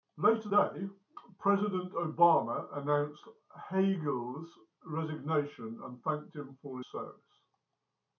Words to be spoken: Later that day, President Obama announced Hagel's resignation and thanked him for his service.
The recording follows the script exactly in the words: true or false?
false